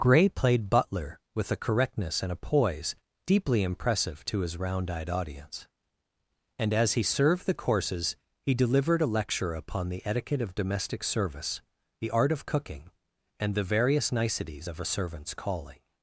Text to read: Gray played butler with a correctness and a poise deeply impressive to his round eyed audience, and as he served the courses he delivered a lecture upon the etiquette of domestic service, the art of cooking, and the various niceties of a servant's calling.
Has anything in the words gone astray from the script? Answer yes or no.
no